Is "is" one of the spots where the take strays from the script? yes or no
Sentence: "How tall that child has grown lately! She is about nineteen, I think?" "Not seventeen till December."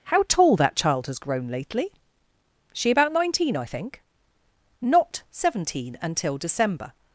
yes